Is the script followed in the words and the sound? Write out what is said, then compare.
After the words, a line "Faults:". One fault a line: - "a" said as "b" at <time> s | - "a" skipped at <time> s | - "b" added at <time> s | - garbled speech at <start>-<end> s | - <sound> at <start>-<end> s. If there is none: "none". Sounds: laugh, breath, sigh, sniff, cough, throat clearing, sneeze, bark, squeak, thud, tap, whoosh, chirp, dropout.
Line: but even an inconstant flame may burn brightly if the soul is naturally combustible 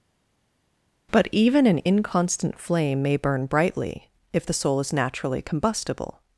but even an inconstant flame may burn brightly if the soul is naturally combustible
Faults:
none